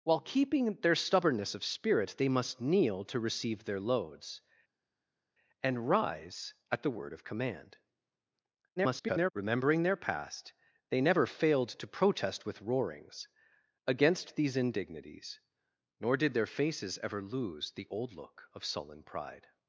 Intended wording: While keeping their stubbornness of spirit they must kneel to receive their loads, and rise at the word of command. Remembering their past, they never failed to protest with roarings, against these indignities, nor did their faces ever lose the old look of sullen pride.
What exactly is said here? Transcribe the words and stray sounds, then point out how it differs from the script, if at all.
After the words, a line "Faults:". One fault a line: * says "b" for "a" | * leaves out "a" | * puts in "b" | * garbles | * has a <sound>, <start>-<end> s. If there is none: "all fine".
While keeping their stubbornness of spirit they must kneel to receive their loads, and rise at the word of command. [garbled] Remembering their past, they never failed to protest with roarings, against these indignities, nor did their faces ever lose the old look of sullen pride.
Faults:
* garbles